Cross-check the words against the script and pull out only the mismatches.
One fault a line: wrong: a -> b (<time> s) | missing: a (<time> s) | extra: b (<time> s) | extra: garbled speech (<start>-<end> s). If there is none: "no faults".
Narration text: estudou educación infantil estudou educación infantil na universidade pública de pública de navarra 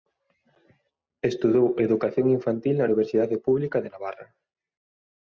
missing: estudou educación infantil (2.7 s)
missing: pública de (3.9 s)